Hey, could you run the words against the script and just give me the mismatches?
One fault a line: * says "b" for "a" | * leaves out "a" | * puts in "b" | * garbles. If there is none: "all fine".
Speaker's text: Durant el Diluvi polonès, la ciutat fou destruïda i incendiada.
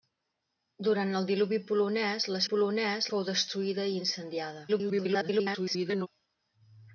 * says "polonès" for "ciutat"
* garbles